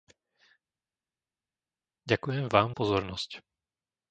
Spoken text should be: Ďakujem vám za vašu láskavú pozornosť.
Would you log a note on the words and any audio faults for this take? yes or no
yes